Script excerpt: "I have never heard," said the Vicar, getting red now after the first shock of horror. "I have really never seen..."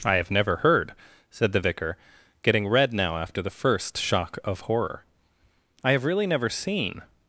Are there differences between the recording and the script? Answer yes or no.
no